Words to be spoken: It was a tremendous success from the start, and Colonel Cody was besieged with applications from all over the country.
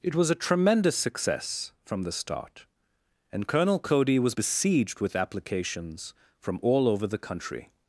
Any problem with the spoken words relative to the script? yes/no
no